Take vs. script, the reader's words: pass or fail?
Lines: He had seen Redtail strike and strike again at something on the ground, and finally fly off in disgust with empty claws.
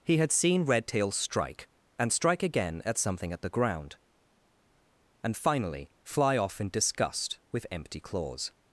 fail